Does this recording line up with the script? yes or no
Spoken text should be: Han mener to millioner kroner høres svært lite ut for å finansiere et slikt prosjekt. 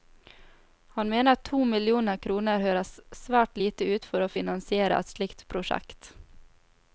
yes